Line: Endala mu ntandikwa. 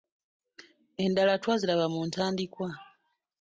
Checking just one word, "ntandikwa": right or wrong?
right